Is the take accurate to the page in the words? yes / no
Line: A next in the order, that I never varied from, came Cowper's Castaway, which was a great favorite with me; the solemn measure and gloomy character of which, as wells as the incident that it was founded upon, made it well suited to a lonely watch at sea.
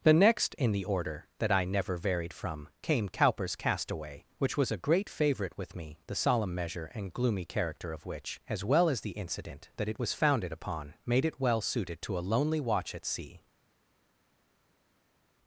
no